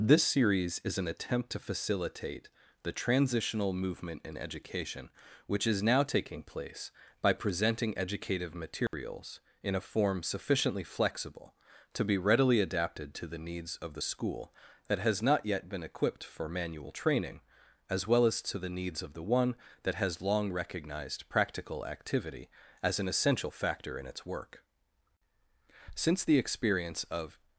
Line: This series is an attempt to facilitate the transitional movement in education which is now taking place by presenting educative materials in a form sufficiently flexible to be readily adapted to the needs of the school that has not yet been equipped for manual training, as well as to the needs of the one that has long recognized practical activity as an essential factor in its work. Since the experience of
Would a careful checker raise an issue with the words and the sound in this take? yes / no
yes